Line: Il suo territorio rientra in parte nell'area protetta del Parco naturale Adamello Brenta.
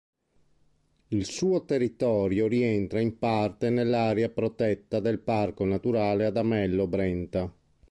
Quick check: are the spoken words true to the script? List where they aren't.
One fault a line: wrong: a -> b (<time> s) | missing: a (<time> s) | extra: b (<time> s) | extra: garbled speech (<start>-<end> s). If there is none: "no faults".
no faults